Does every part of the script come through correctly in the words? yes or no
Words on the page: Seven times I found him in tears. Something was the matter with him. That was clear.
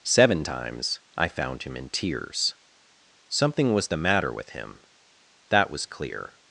yes